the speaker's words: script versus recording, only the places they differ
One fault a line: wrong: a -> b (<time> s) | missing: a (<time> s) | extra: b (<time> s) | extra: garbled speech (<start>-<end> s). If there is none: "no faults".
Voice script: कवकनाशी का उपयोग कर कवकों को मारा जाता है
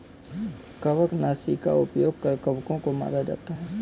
no faults